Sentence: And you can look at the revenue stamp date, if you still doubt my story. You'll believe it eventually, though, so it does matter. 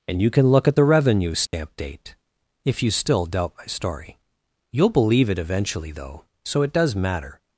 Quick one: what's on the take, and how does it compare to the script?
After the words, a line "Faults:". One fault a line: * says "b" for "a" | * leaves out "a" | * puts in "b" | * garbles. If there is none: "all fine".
And you can look at the revenue stamp date, if you still doubt my story. You'll believe it eventually, though, so it does matter.
Faults:
all fine